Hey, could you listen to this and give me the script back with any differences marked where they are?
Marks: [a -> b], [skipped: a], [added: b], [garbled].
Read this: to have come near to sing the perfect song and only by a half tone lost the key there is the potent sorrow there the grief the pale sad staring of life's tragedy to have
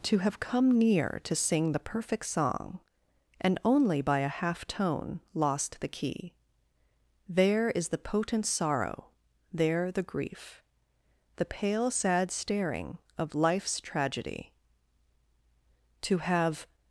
to have come near to sing the perfect song and only by a half tone lost the key there is the potent sorrow there the grief the pale sad staring of life's tragedy to have